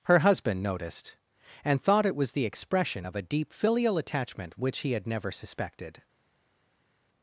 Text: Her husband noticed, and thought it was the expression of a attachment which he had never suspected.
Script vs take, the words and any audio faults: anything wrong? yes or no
yes